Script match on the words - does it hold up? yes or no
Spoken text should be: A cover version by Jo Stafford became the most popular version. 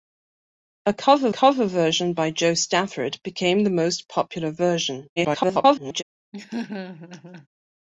no